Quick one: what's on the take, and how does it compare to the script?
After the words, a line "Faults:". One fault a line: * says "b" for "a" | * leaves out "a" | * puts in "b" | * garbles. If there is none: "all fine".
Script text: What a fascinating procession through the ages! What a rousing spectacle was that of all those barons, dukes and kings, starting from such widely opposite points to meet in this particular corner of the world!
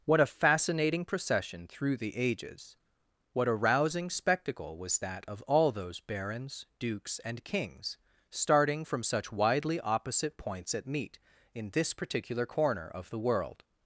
What a fascinating procession through the ages! What a rousing spectacle was that of all those barons, dukes and kings, starting from such widely opposite points at meet in this particular corner of the world!
Faults:
* says "at" for "to"